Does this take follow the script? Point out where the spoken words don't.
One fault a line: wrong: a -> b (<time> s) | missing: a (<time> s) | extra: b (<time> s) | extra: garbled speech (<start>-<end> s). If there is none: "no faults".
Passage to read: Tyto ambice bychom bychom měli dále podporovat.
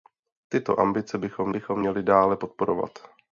no faults